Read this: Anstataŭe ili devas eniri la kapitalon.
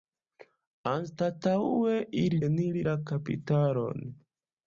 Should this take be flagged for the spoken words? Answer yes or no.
yes